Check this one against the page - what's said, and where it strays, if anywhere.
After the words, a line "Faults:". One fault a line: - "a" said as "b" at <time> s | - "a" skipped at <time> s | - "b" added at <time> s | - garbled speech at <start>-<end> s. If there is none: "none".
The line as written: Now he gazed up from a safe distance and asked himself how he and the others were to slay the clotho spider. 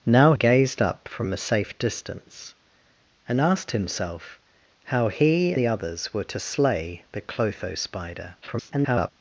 Now gazed up from a safe distance and asked himself how he the others were to slay the clotho spider. [garbled]
Faults:
- "he" skipped at 0.3 s
- "and" skipped at 5.6 s
- garbled speech at 8.4-9.1 s